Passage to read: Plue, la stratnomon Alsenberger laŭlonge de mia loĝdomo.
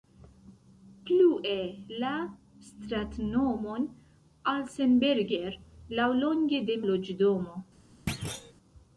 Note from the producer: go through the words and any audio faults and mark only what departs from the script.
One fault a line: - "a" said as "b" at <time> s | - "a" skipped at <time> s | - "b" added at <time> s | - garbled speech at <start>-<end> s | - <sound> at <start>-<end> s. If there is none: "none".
- "mia" skipped at 6.8 s
- thud at 8.1-8.5 s